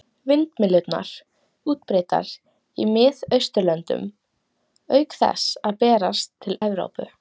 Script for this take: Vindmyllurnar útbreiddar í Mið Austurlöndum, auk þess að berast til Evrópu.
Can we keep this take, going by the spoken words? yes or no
yes